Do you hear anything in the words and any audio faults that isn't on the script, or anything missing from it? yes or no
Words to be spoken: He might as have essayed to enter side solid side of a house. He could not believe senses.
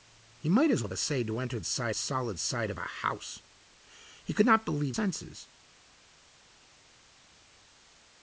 no